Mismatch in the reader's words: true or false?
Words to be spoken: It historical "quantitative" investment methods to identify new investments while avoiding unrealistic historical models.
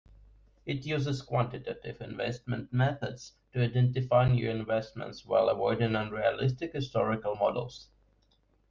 true